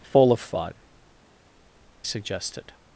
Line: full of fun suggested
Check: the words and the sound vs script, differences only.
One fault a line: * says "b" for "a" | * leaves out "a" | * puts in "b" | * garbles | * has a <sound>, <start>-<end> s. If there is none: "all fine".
all fine